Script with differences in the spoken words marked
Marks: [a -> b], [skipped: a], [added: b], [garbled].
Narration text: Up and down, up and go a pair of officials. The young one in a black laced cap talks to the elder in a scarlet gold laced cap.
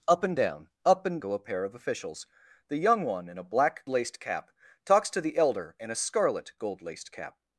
Up and down, up and go a pair of officials. The young one in a black laced cap talks to the elder in a scarlet gold laced cap.